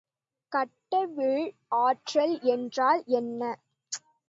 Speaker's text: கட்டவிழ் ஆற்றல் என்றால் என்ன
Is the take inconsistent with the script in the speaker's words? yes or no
no